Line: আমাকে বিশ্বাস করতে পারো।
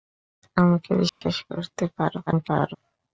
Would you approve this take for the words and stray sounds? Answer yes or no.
no